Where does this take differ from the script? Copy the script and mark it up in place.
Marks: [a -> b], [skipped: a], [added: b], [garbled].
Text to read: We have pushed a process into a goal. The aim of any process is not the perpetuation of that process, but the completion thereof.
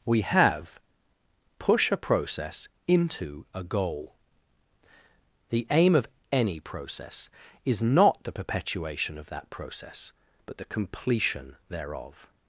We have [pushed -> push] a process into a goal. The aim of any process is not the perpetuation of that process, but the completion thereof.